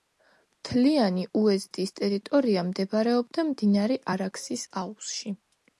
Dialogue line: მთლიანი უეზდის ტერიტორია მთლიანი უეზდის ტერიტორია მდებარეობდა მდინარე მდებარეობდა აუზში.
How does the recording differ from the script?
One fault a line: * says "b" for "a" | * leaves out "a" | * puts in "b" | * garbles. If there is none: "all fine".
* leaves out "მთლიანი უეზდის ტერიტორია"
* says "არაქსის" for "მდებარეობდა"